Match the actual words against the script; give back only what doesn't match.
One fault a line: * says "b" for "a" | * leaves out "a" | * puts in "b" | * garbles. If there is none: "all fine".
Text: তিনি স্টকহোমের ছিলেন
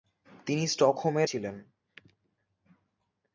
all fine